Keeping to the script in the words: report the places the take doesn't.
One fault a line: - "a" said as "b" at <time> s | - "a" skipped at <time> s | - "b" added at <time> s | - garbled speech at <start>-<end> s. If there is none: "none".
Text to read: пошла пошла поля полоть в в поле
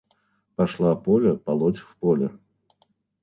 - "пошла" skipped at 0.9 s
- "в" skipped at 2.0 s